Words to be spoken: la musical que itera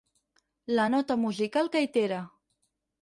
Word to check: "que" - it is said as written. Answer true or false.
true